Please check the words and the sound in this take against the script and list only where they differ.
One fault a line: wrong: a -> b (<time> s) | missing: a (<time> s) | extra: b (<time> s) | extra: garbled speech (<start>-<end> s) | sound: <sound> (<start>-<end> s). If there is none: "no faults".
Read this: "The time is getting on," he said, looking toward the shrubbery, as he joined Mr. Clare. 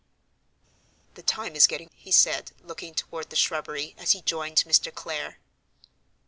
missing: on (1.9 s)